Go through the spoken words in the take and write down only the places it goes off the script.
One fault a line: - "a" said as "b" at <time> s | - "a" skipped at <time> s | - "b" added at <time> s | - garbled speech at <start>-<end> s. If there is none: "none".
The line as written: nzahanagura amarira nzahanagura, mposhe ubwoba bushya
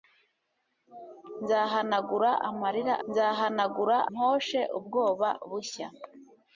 none